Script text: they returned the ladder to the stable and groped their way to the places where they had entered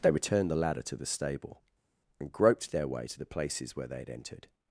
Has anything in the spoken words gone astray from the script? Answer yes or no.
no